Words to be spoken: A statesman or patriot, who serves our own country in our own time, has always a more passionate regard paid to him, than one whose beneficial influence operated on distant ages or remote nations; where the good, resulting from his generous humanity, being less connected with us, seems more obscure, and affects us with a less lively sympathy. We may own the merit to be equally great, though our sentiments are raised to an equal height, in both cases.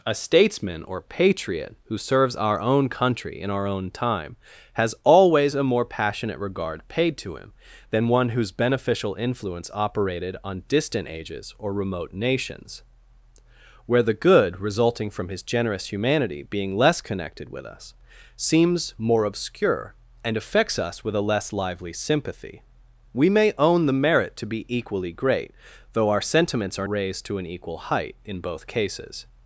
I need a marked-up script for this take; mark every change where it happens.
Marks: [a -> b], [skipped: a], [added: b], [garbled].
A statesman or patriot, who serves our own country in our own time, has always a more passionate regard paid to him, than one whose beneficial influence operated on distant ages or remote nations; where the good, resulting from his generous humanity, being less connected with us, seems more obscure, and affects us with a less lively sympathy. We may own the merit to be equally great, though our sentiments are raised to an equal height, in both cases.